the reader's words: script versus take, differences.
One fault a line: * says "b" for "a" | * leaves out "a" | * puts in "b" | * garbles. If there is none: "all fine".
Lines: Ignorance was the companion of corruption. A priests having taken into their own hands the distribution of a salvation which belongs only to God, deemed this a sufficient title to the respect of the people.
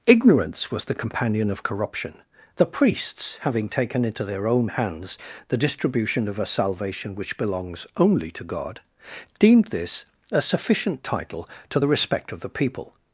* says "The" for "A"